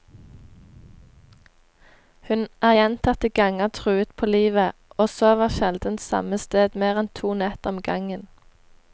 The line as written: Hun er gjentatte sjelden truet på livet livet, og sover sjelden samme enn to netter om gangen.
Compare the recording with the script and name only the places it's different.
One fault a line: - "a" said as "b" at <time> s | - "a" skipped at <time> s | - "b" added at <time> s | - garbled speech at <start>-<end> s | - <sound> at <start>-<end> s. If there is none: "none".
- "sjelden" said as "ganger" at 3.3 s
- "livet" skipped at 4.7 s
- "sted mer" added at 6.4 s